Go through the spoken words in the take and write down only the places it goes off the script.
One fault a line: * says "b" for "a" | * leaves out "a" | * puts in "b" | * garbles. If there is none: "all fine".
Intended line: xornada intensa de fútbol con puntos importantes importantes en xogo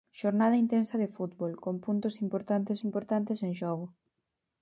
all fine